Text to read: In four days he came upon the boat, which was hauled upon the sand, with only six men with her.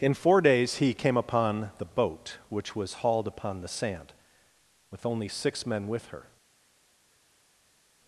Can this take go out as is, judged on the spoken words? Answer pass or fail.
pass